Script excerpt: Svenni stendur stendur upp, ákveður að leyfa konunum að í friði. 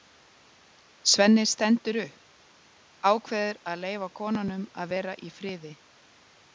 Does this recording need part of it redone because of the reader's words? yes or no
yes